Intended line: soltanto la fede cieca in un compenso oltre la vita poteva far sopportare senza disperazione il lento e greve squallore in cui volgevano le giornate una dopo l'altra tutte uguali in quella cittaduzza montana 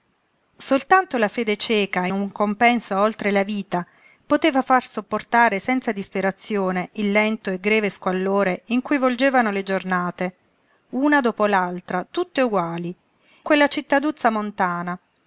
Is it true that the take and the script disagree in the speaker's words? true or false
true